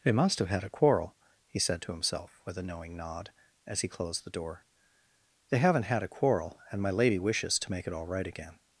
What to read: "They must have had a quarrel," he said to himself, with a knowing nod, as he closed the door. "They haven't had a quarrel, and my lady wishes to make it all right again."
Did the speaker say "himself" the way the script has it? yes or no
yes